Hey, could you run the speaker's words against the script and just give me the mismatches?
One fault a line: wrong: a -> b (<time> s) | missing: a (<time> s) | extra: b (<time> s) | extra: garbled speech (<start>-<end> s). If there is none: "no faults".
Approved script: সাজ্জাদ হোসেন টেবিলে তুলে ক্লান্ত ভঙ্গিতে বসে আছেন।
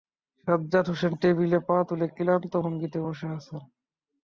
extra: পা (1.7 s)